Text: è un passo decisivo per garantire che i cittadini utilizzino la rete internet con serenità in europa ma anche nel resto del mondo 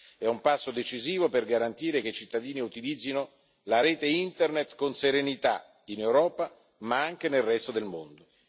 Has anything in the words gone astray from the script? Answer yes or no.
no